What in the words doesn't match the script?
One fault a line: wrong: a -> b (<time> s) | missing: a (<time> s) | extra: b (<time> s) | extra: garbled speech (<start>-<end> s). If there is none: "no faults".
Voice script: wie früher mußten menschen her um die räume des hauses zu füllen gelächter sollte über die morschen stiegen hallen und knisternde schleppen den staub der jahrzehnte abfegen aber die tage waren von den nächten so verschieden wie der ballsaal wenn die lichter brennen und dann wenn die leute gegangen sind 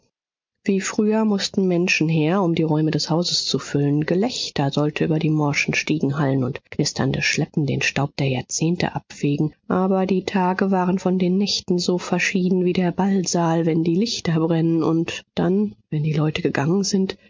no faults